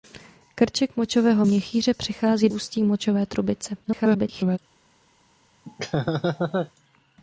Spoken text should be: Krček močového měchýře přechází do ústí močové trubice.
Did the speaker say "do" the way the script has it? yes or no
no